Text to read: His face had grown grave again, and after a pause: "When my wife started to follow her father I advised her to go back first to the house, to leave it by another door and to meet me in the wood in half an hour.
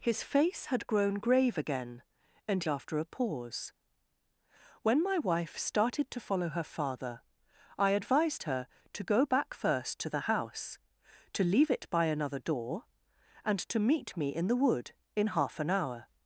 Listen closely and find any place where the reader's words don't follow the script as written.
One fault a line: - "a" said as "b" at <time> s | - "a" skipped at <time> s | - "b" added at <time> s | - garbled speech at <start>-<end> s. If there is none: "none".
none